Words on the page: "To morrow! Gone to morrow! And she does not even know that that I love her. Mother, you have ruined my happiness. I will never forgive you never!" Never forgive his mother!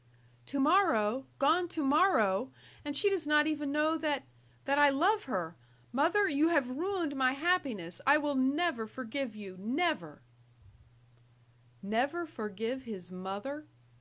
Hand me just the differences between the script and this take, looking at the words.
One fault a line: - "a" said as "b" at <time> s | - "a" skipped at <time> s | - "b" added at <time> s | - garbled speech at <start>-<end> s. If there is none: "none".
none